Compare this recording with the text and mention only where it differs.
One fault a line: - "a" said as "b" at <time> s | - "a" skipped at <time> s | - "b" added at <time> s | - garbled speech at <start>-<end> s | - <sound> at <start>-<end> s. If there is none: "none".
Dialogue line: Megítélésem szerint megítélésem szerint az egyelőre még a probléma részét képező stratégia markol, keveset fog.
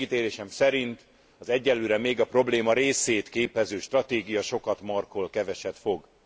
- "megítélésem szerint" skipped at 1.1 s
- "sokat" added at 4.4 s